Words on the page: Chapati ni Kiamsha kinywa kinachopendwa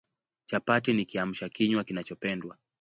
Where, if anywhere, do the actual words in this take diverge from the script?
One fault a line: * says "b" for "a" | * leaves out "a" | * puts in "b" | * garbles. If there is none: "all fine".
all fine